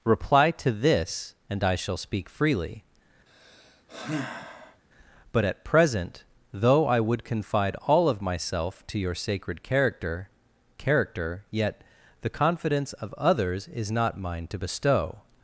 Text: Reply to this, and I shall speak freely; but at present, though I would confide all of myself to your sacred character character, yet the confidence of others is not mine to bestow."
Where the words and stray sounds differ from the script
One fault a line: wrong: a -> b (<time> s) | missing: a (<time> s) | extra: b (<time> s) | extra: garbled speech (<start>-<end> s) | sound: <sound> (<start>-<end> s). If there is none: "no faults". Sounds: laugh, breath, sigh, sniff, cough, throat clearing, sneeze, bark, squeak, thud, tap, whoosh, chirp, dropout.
sound: sigh (3.3-4.8 s)